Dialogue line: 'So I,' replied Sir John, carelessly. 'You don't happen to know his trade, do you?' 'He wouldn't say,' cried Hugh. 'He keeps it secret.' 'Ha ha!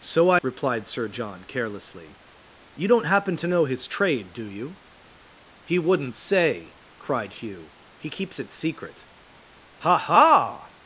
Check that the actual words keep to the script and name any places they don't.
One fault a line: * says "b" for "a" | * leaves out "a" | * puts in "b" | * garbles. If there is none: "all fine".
all fine